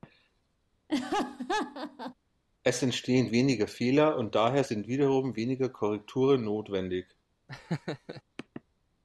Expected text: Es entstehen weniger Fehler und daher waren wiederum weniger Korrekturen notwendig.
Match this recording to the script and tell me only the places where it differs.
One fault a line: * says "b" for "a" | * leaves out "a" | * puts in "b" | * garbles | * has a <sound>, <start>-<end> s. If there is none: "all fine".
* has a laugh, 0.9-2.1 s
* says "sind" for "waren"
* has a laugh, 7.5-8.2 s